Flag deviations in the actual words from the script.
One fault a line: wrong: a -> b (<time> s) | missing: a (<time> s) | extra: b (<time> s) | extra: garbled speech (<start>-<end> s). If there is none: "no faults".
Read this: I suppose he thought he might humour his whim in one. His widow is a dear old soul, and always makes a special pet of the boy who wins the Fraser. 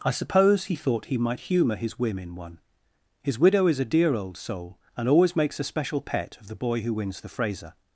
no faults